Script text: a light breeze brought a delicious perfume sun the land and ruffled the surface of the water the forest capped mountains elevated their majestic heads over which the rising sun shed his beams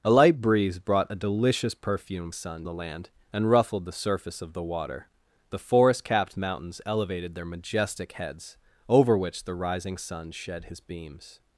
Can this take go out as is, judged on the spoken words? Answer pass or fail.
pass